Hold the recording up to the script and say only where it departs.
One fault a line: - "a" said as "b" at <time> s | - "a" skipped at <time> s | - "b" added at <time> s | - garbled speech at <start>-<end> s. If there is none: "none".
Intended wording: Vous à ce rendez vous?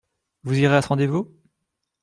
- "irez" added at 0.6 s